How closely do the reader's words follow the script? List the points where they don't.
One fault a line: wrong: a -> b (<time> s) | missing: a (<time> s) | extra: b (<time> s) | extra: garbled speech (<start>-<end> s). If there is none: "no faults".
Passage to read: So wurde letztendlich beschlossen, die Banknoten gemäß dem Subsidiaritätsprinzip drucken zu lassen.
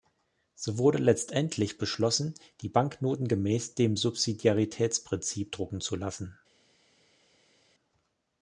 no faults